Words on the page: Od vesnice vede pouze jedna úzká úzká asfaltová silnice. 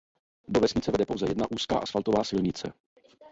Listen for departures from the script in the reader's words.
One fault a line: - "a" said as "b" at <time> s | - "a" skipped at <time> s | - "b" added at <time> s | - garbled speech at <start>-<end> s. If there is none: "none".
- "Od" said as "Do" at 0.5 s
- "úzká" skipped at 1.8 s